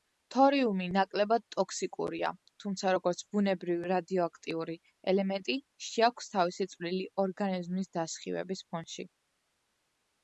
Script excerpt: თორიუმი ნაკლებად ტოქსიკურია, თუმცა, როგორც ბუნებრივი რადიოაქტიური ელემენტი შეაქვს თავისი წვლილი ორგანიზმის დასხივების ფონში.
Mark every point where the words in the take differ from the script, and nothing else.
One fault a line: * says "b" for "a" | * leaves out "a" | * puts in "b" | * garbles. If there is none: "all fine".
all fine